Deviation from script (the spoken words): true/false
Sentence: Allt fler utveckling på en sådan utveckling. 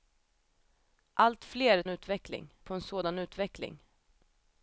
false